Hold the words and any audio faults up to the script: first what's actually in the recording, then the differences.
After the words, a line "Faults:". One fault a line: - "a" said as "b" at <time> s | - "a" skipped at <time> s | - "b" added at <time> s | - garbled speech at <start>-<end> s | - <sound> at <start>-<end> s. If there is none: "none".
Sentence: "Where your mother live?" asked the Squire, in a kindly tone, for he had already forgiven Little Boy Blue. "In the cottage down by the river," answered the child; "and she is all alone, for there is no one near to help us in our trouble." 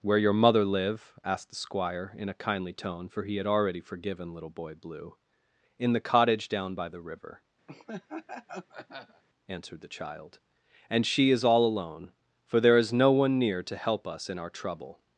"Where your mother live?" asked the Squire, in a kindly tone, for he had already forgiven Little Boy Blue. "In the cottage down by the river," answered the child; "and she is all alone, for there is no one near to help us in our trouble."
Faults:
- laugh at 7.7-9.2 s